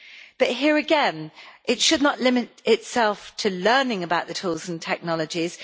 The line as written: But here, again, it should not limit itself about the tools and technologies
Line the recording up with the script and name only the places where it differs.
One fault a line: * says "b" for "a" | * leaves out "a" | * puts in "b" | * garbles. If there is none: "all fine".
* puts in "to learning"